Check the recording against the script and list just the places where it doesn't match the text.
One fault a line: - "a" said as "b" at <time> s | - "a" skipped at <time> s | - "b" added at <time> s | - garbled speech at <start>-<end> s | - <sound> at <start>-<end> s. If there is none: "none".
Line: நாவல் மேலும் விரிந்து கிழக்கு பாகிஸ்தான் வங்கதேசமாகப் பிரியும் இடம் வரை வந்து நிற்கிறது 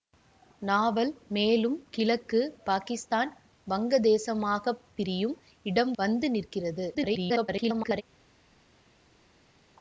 - "விரிந்து" skipped at 1.8 s
- "வரை" skipped at 5.9 s
- garbled speech at 6.9-8.0 s